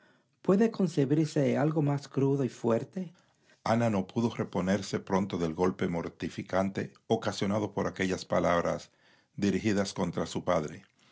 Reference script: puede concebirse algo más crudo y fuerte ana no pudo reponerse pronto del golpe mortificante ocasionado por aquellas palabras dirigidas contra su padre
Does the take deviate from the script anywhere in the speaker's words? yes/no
no